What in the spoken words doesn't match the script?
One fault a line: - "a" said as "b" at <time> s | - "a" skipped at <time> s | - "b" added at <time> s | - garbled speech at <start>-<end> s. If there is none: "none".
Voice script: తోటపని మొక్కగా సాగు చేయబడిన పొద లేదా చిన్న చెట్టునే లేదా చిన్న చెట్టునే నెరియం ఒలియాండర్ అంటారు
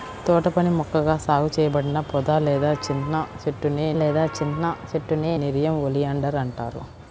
none